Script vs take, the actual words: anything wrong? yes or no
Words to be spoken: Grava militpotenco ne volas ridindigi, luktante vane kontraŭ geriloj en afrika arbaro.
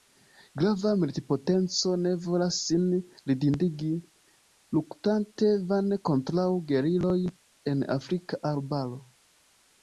yes